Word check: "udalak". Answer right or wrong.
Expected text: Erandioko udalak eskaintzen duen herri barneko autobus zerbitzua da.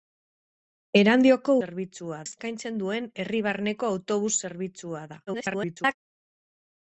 wrong